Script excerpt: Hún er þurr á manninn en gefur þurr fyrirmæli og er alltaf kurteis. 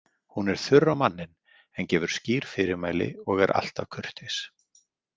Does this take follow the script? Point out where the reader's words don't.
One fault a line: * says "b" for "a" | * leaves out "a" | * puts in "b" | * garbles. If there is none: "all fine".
* says "skýr" for "þurr"